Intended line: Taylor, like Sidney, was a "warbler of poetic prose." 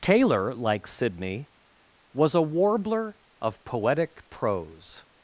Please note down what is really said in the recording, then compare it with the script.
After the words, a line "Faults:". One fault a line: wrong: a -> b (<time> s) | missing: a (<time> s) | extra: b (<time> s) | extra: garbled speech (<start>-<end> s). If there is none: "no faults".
Taylor, like Sidney, was a "warbler of poetic prose."
Faults:
no faults